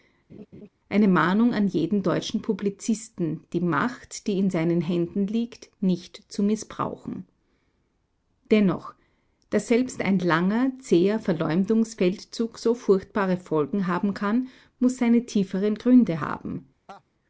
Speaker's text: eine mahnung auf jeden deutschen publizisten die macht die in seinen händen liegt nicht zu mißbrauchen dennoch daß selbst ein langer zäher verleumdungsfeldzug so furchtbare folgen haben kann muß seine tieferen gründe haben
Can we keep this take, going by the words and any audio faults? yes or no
no